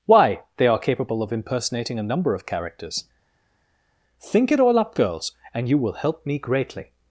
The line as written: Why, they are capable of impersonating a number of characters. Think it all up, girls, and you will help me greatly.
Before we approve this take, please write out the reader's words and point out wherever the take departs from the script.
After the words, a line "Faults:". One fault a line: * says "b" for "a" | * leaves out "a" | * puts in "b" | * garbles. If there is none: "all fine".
Why, they are capable of impersonating a number of characters. Think it all up, girls, and you will help me greatly.
Faults:
all fine